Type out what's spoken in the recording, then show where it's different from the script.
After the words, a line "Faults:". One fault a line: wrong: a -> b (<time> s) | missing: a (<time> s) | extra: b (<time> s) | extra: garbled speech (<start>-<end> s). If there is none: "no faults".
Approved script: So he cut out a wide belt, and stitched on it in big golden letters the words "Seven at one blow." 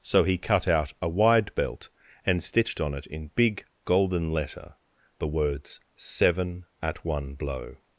So he cut out a wide belt, and stitched on it in big golden letter the words "Seven at one blow."
Faults:
wrong: letters -> letter (4.3 s)